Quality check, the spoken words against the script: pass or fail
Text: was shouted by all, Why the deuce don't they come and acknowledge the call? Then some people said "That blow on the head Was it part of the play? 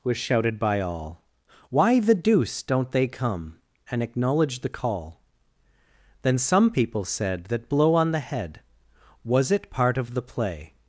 pass